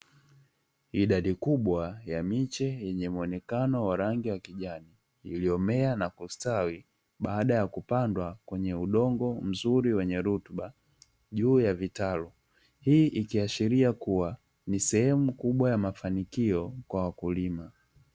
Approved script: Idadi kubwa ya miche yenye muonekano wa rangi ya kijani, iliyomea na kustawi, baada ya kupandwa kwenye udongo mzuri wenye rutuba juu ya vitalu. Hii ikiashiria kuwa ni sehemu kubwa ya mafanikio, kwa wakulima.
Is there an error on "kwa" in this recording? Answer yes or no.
no